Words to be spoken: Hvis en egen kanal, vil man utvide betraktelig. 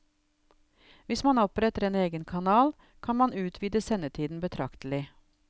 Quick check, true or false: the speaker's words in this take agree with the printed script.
false